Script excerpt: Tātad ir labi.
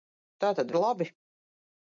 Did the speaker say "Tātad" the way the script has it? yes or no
yes